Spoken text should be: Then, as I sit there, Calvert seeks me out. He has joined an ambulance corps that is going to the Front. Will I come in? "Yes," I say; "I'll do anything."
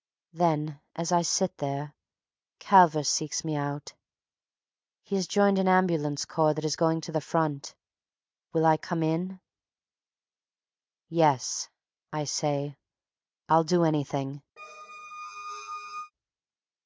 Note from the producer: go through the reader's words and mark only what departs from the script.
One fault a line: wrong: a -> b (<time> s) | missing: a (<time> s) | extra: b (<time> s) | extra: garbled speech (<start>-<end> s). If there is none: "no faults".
no faults